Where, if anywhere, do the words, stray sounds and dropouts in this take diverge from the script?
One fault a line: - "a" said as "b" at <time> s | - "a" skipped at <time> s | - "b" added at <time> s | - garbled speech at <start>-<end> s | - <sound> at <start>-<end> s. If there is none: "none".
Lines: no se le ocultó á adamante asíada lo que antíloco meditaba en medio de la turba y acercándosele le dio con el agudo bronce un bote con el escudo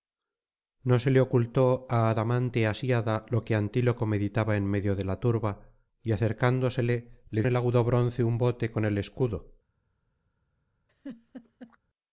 - "dio con" skipped at 7.4 s
- laugh at 10.9-11.8 s